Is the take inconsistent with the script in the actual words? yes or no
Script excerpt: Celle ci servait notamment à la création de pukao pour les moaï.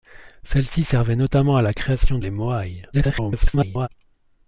yes